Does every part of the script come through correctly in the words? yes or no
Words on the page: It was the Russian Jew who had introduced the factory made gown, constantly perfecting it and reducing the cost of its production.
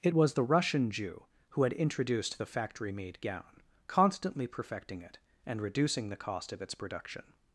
yes